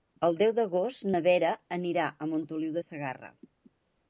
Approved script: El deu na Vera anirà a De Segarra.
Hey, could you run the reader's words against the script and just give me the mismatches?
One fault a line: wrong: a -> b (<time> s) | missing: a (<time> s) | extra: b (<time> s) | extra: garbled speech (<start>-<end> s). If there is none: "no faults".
extra: d'agost (0.6 s)
extra: Montoliu (2.3 s)